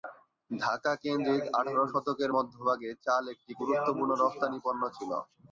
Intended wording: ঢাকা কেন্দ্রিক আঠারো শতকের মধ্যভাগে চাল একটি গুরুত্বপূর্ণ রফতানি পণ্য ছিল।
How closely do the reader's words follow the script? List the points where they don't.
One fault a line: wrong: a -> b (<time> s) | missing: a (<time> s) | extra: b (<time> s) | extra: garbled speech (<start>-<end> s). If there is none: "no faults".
no faults